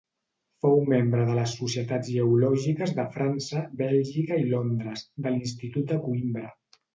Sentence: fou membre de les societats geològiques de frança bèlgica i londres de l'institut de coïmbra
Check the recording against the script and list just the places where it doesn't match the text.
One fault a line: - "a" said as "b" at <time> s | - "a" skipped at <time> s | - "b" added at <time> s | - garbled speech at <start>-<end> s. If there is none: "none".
none